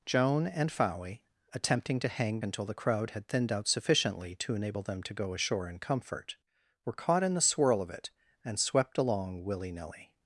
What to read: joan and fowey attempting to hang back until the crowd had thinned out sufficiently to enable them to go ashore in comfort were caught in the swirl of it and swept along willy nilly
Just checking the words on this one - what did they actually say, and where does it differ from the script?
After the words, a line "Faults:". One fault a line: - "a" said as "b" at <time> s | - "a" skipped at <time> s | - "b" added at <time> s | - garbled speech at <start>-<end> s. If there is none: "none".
joan and fowey attempting to hang until the crowd had thinned out sufficiently to enable them to go ashore in comfort were caught in the swirl of it and swept along willy nilly
Faults:
- "back" skipped at 2.4 s